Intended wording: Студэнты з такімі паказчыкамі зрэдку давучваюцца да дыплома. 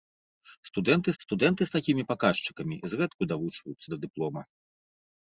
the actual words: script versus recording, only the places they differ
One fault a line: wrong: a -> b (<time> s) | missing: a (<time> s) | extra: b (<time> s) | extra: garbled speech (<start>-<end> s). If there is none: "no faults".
extra: студэнты (1.2 s)